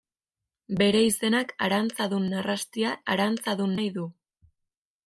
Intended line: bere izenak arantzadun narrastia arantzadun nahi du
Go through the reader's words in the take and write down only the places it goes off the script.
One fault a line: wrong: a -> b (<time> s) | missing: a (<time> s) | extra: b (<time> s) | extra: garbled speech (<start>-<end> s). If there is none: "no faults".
no faults